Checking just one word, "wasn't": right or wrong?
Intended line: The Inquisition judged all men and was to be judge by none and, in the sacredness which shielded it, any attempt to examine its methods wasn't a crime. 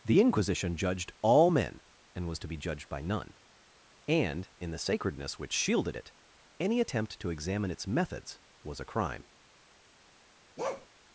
wrong